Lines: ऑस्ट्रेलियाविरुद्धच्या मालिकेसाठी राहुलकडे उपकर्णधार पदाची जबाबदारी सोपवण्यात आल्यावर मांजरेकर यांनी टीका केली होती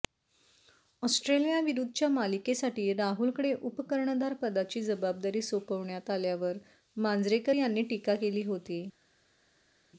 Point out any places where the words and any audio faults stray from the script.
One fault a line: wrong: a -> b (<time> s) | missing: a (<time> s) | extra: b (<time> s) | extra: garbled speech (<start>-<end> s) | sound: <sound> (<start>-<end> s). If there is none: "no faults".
no faults